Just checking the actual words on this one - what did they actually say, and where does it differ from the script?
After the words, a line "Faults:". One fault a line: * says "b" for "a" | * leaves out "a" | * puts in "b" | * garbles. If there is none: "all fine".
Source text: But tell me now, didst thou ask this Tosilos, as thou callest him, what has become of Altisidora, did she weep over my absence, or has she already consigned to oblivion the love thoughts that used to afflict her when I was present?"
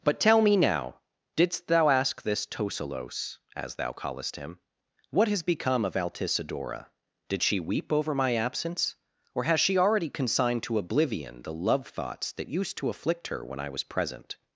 But tell me now, didst thou ask this Tosilos, as thou callest him, what has become of Altisidora, did she weep over my absence, or has she already consigned to oblivion the love thoughts that used to afflict her when I was present?"
Faults:
all fine